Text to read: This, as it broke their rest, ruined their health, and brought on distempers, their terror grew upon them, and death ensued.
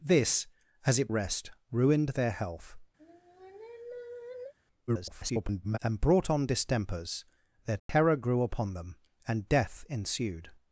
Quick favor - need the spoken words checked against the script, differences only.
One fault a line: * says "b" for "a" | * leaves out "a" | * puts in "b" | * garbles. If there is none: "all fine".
* leaves out "broke their"
* garbles